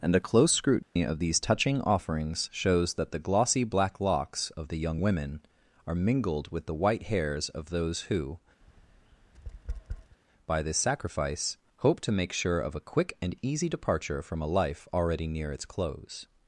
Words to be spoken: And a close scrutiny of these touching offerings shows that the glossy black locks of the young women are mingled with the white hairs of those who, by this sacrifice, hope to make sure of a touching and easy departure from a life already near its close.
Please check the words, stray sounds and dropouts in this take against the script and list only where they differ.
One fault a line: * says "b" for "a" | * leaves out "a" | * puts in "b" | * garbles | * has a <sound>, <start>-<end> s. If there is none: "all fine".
* has a dropout, 0.8-1.0 s
* has a tap, 8.6-10.2 s
* says "quick" for "touching"